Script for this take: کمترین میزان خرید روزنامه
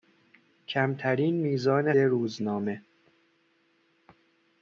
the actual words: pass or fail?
fail